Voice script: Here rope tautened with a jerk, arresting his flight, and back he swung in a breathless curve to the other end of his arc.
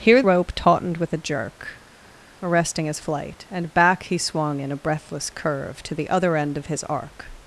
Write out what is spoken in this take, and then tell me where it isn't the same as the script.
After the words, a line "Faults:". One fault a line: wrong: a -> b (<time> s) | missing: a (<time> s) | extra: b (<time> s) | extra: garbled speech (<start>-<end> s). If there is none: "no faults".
Here rope tautened with a jerk, arresting his flight, and back he swung in a breathless curve to the other end of his arc.
Faults:
no faults